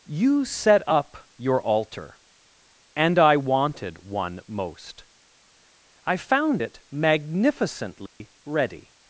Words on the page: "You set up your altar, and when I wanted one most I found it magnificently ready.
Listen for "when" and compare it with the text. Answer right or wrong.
wrong